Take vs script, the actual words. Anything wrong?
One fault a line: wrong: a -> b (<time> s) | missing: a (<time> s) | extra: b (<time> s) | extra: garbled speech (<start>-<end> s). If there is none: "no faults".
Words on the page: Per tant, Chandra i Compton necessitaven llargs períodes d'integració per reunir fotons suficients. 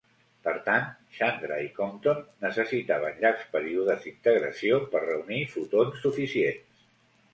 no faults